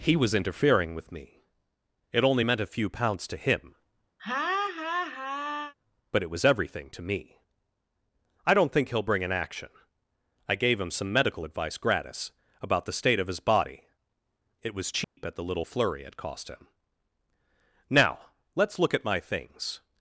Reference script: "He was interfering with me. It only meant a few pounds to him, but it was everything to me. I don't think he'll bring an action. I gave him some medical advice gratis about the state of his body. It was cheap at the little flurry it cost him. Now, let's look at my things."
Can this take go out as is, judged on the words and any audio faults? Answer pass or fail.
fail